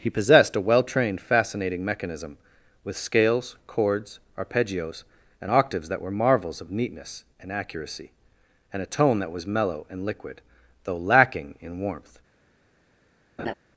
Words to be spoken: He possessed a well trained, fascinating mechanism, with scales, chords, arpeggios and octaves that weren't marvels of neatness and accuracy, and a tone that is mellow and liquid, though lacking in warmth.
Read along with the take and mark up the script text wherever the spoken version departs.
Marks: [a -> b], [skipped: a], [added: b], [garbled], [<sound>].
He possessed a well trained, fascinating mechanism, with scales, chords, arpeggios and octaves that [weren't -> were] marvels of neatness and accuracy, and a tone that [is -> was] mellow and liquid, though lacking in warmth. [laugh]